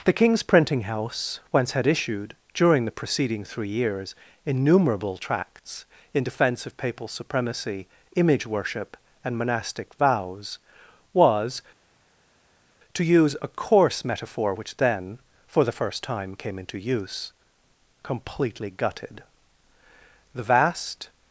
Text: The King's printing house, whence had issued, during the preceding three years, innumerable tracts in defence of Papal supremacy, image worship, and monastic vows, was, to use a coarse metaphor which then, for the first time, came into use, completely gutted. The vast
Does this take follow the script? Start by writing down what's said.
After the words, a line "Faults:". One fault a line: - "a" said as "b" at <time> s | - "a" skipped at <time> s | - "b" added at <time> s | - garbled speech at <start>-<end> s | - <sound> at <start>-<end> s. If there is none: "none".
The King's printing house, whence had issued, during the preceding three years, innumerable tracts in defence of Papal supremacy, image worship, and monastic vows, was, to use a coarse metaphor which then, for the first time, came into use, completely gutted. The vast
Faults:
none